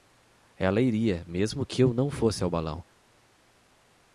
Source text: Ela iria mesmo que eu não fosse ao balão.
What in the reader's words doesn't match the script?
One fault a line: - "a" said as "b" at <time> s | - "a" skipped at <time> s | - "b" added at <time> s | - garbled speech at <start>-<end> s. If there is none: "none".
none